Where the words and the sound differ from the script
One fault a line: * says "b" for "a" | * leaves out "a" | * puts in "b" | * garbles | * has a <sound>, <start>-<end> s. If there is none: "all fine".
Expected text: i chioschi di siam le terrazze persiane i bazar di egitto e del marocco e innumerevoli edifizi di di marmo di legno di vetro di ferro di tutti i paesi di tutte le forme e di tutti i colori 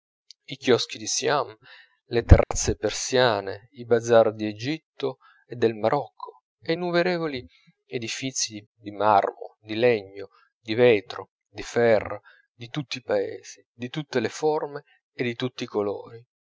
* has a dropout, 2.4-2.5 s